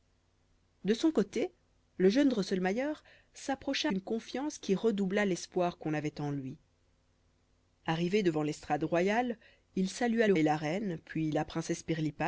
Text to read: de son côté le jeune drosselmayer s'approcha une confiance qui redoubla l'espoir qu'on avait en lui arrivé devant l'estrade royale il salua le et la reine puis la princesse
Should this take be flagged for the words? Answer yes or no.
no